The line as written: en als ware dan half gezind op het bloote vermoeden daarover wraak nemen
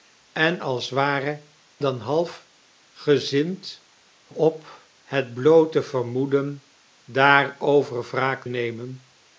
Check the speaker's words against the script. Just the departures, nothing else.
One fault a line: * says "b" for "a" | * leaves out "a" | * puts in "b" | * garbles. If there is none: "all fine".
all fine